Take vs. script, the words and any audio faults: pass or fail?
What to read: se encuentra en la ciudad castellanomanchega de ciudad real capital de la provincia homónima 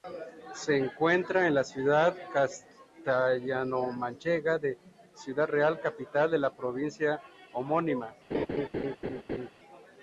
fail